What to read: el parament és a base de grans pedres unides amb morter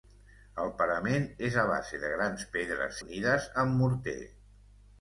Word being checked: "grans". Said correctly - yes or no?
yes